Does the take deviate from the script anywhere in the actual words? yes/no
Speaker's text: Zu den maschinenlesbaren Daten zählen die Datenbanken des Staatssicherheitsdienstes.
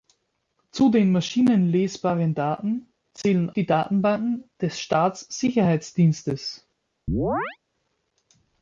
no